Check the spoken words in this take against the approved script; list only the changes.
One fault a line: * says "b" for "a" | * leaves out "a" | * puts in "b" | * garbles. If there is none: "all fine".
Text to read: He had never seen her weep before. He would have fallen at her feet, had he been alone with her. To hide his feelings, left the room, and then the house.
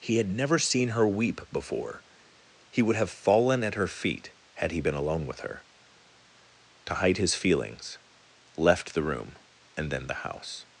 all fine